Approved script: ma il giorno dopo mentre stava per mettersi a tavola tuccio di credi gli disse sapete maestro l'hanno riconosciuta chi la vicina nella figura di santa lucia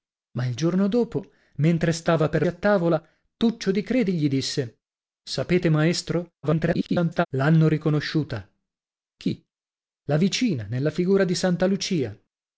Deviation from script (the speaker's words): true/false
true